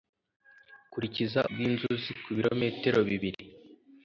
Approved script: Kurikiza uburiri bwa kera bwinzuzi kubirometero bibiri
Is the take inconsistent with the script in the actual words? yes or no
yes